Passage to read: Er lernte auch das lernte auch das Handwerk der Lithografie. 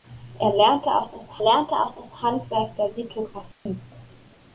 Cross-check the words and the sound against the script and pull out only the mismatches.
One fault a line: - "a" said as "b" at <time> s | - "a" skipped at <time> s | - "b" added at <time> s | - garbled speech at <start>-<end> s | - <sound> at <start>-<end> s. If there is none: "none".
- dropout at 3.5-3.7 s